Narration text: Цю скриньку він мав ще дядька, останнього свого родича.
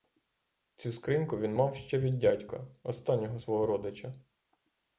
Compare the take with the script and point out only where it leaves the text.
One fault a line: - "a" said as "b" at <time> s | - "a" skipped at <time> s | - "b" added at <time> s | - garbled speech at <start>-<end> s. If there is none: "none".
- "від" added at 2.0 s